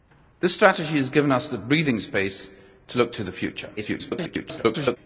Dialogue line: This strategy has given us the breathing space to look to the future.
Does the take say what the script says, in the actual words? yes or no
no